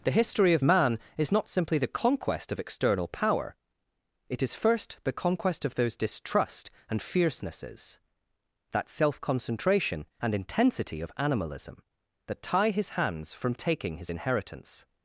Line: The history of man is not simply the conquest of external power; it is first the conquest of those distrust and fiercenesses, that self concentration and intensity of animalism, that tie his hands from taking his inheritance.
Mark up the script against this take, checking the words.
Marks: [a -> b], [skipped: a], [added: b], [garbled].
The history of man is not simply the conquest of external power; it is first the conquest of those distrust and fiercenesses, that self concentration and intensity of animalism, that tie his hands from taking his inheritance.